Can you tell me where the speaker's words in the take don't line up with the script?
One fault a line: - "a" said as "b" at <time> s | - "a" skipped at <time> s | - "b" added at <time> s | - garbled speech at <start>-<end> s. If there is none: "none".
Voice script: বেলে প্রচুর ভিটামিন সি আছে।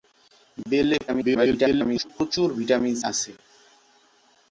- garbled speech at 1.1-2.1 s
- "সি" skipped at 3.0 s